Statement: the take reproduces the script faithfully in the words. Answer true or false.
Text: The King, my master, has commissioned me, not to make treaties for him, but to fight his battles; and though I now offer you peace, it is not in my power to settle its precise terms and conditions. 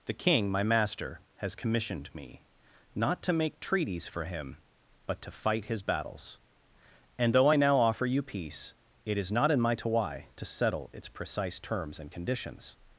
false